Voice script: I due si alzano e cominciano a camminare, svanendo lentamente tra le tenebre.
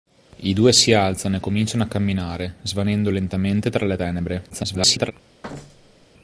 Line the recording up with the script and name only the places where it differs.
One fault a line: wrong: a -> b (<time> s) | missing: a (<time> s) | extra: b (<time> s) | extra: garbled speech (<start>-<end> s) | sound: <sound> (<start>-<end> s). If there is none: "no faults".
extra: garbled speech (4.5-5.1 s)
sound: thud (5.4-6.1 s)